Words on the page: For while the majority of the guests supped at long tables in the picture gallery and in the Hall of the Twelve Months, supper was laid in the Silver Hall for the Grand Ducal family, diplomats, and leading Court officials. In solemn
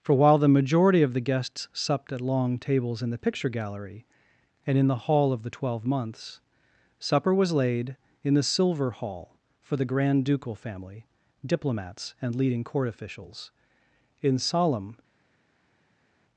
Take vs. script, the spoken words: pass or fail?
pass